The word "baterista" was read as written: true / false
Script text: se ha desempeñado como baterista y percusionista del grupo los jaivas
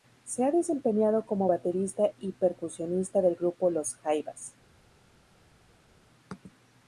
true